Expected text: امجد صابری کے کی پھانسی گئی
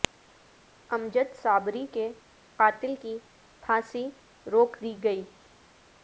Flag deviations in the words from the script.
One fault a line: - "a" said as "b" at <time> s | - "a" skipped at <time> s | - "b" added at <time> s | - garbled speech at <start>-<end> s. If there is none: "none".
- "قاتل" added at 2.6 s
- "روک دی" added at 4.5 s